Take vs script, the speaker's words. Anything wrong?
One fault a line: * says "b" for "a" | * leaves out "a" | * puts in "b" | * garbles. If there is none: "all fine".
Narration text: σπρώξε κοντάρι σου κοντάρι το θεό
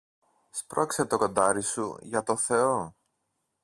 * puts in "το"
* says "για" for "κοντάρι"